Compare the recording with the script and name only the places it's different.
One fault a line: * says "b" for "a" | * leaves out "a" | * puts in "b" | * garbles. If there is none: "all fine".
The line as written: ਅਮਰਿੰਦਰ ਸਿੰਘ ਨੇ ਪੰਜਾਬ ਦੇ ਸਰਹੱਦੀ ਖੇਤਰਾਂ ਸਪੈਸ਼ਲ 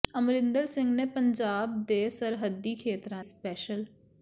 all fine